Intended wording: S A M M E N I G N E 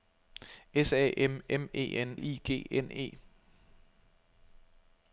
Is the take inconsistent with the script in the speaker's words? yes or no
no